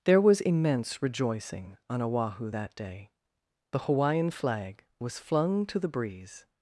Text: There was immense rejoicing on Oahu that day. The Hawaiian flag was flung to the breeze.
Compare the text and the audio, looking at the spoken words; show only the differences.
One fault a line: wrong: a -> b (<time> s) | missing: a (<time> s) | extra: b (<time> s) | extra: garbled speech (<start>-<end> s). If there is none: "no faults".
no faults